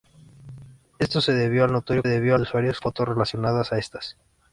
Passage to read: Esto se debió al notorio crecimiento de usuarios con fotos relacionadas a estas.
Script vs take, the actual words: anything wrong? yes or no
yes